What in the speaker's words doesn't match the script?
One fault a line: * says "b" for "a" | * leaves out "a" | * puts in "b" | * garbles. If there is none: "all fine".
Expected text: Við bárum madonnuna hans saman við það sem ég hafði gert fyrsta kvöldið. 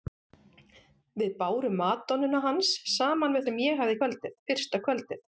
* leaves out "það"
* says "kvöldið" for "gert"